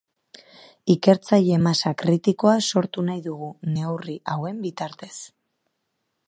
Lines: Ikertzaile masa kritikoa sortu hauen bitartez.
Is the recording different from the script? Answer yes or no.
yes